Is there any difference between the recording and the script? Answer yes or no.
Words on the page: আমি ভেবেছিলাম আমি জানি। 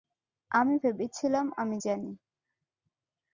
no